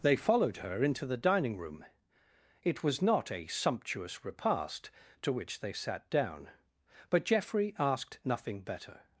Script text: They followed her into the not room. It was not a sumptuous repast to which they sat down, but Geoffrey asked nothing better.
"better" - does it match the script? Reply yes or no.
yes